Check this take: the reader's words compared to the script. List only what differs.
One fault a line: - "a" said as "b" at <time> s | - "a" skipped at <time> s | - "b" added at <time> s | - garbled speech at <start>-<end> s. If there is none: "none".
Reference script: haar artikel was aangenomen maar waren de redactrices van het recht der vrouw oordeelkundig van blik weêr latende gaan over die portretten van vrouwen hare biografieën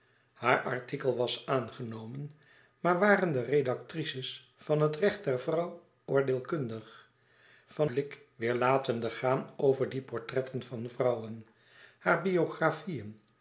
none